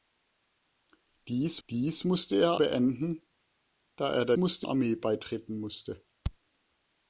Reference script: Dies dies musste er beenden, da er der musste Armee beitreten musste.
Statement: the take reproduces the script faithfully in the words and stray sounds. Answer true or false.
true